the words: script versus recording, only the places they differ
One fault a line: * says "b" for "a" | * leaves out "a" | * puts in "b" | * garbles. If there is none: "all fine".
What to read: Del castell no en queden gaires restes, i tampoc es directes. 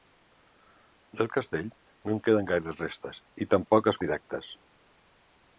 all fine